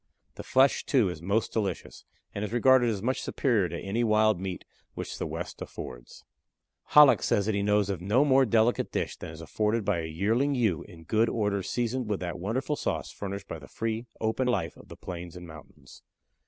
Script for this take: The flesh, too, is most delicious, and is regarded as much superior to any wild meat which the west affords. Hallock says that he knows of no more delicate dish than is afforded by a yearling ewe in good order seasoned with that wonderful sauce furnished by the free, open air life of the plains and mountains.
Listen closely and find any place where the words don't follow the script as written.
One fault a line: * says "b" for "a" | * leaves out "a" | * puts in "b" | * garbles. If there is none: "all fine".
* leaves out "air"